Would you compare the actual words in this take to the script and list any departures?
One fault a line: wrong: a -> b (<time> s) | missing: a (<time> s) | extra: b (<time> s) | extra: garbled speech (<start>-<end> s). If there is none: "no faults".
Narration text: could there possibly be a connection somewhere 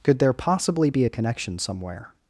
no faults